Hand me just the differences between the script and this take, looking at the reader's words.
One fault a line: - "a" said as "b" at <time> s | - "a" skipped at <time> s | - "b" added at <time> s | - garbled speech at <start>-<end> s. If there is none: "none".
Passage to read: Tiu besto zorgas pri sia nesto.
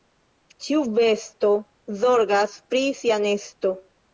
- "Tiu" said as "Ĉiu" at 0.7 s